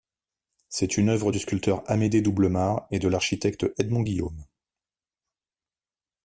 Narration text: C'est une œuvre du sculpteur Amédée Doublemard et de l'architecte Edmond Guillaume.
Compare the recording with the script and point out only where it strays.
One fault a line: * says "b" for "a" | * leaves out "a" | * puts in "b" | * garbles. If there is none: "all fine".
all fine